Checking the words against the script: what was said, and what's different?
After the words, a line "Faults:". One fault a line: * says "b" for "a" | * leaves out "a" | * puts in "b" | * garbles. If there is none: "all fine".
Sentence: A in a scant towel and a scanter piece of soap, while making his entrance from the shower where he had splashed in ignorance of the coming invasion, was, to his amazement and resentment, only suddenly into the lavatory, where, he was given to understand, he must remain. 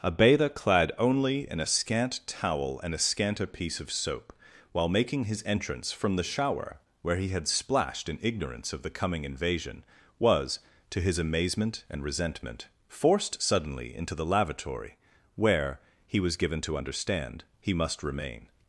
A bather clad only in a scant towel and a scanter piece of soap, while making his entrance from the shower where he had splashed in ignorance of the coming invasion, was, to his amazement and resentment, forced suddenly into the lavatory, where, he was given to understand, he must remain.
Faults:
* puts in "bather clad only"
* says "forced" for "only"